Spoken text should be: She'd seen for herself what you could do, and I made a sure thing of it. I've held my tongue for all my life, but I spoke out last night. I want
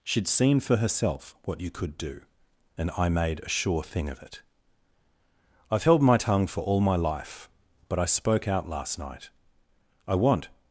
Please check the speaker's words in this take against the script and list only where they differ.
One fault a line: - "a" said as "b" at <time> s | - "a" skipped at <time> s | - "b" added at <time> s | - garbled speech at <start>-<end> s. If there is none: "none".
none